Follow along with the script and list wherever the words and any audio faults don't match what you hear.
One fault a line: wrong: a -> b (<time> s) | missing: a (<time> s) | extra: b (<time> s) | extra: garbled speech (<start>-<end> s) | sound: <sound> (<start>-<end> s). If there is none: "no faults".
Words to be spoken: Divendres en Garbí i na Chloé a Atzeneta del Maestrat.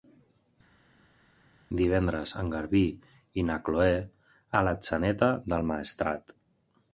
no faults